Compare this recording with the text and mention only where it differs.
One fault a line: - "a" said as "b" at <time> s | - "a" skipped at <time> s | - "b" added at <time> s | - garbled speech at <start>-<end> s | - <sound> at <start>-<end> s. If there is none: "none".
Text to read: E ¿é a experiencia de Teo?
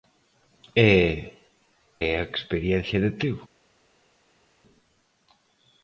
none